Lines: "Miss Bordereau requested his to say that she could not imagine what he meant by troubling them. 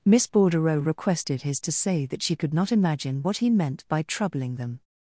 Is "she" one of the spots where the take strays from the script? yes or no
no